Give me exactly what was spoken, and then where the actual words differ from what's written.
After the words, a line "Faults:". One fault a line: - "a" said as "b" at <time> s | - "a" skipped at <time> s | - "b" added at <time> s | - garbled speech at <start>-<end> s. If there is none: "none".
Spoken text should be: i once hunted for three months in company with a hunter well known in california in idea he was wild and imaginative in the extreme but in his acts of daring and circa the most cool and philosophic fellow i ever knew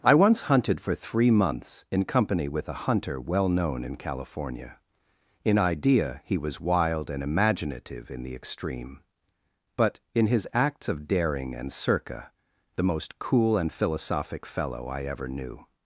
i once hunted for three months in company with a hunter well known in california in idea he was wild and imaginative in the extreme but in his acts of daring and circa the most cool and philosophic fellow i ever knew
Faults:
none